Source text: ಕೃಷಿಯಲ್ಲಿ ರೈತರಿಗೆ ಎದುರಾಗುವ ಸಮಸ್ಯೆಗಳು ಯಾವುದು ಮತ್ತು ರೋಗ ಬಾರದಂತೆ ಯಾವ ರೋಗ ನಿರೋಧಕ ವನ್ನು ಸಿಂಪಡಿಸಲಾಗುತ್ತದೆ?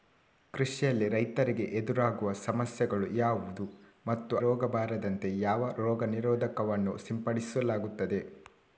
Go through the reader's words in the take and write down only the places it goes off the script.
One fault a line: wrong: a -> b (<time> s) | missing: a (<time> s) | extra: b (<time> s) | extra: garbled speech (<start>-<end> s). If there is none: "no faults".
no faults